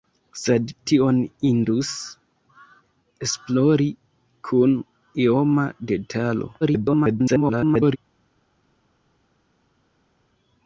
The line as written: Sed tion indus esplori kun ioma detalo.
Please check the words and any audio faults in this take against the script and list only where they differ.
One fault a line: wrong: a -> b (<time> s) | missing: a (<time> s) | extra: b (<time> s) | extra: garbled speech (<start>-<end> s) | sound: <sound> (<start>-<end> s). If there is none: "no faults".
extra: garbled speech (6.6-8.0 s)